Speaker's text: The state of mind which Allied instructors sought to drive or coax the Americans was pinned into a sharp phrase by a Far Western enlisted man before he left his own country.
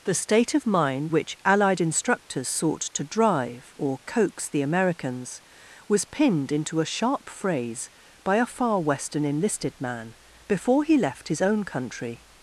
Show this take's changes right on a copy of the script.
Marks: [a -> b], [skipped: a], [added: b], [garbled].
The state of mind which Allied instructors sought to drive or coax the Americans was pinned into a sharp phrase by a Far Western enlisted man before he left his own country.